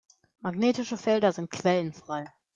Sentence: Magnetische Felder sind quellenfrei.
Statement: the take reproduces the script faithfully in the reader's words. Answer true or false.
true